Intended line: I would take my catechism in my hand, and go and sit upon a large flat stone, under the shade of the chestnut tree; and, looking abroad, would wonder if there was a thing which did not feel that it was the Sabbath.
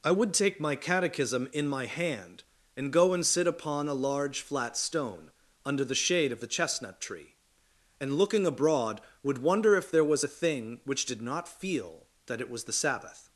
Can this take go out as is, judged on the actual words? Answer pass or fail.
pass